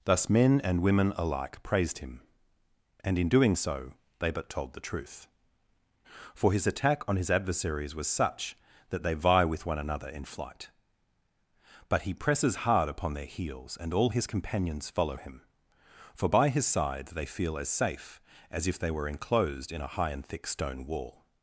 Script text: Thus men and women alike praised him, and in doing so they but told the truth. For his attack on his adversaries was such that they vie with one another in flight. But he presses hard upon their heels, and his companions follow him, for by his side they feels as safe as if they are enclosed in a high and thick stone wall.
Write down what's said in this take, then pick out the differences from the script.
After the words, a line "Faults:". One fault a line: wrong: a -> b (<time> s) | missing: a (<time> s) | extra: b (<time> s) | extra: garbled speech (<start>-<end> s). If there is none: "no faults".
Thus men and women alike praised him, and in doing so they but told the truth. For his attack on his adversaries was such that they vie with one another in flight. But he presses hard upon their heels, and all his companions follow him, for by his side they feel as safe as if they were enclosed in a high and thick stone wall.
Faults:
extra: all (13.9 s)
wrong: feels -> feel (17.2 s)
wrong: are -> were (18.9 s)